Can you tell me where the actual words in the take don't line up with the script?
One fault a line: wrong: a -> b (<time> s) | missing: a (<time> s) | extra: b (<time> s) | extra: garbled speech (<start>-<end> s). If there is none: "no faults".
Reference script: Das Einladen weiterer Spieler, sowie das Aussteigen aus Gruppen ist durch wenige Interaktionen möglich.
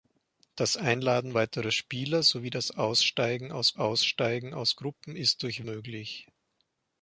extra: Aussteigen aus (3.7 s)
missing: wenige Interaktionen (5.6 s)